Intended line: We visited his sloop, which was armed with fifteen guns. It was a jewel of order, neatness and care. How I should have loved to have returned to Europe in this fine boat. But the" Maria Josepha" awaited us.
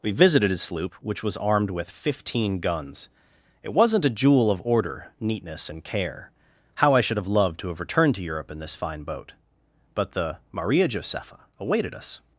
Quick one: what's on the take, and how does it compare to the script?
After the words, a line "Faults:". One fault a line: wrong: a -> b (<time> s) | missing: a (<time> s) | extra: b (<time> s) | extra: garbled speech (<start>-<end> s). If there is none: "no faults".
We visited his sloop, which was armed with fifteen guns. It wasn't a jewel of order, neatness and care. How I should have loved to have returned to Europe in this fine boat. But the" Maria Josepha" awaited us.
Faults:
wrong: was -> wasn't (3.7 s)